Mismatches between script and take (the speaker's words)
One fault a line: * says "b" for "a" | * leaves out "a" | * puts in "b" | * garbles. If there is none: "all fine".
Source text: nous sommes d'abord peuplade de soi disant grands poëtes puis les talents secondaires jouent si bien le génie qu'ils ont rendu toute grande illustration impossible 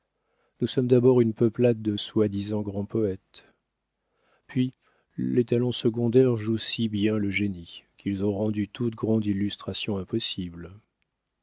* puts in "une"